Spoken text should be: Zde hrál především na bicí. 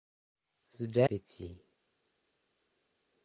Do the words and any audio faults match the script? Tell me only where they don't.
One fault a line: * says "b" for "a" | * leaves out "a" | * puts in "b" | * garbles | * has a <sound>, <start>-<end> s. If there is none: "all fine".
* leaves out "hrál především na"